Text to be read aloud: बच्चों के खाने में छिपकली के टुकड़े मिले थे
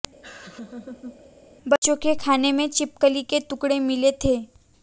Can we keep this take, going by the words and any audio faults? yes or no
no